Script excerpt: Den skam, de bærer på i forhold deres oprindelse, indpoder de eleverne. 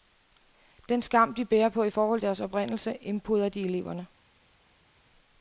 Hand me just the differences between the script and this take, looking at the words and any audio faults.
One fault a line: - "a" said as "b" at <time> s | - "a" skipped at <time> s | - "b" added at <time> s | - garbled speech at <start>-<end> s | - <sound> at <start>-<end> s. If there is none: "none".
none